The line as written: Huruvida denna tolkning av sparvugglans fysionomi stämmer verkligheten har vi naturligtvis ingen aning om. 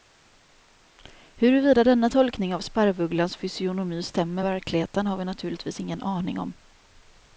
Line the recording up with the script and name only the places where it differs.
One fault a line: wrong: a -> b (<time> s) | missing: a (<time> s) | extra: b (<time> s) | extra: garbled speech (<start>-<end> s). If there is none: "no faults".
no faults